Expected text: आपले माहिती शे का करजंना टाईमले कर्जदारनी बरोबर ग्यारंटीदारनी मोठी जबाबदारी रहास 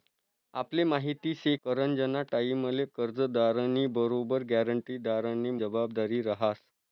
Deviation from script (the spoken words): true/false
true